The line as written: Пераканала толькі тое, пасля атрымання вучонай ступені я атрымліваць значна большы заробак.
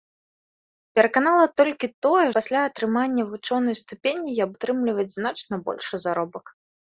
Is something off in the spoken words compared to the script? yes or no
no